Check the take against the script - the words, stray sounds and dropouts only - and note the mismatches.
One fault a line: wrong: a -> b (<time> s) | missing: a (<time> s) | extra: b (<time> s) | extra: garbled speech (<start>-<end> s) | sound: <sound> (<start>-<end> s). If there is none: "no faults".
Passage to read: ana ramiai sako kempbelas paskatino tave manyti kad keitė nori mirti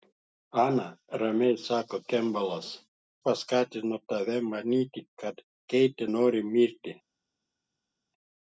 no faults